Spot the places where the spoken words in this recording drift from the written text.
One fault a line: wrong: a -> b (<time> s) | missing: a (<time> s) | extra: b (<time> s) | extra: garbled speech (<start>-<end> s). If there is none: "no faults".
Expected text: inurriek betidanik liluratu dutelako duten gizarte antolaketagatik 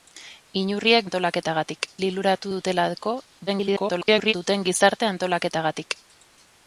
wrong: betidanik -> antolaketagatik (1.1 s)
extra: garbled speech (3.5-4.3 s)